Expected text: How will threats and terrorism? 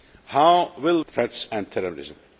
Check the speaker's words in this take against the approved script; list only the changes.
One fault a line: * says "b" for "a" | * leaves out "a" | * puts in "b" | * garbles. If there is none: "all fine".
all fine